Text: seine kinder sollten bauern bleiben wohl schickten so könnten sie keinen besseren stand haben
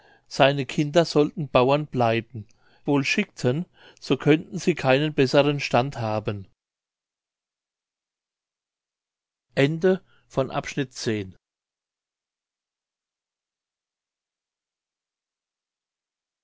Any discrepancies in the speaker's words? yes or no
no